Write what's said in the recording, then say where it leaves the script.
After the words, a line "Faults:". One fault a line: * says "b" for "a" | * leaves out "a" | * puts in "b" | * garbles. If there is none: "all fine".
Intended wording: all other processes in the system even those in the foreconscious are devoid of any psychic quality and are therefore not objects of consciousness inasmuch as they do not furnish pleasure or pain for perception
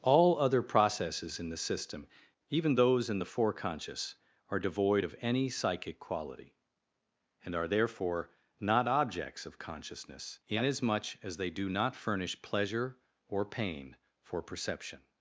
all other processes in the system even those in the foreconscious are devoid of any psychic quality and are therefore not objects of consciousness inasmuch as they do not furnish pleasure or pain for perception
Faults:
all fine